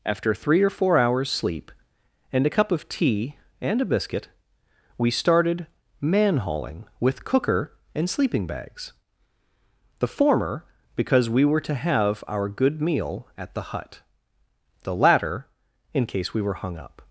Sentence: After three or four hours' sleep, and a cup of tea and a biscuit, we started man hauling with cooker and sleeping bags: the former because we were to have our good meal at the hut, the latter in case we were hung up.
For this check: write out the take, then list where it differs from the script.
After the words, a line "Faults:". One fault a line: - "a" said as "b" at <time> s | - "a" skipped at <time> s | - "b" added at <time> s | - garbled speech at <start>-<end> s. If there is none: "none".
After three or four hours' sleep, and a cup of tea and a biscuit, we started man hauling with cooker and sleeping bags: the former because we were to have our good meal at the hut, the latter in case we were hung up.
Faults:
none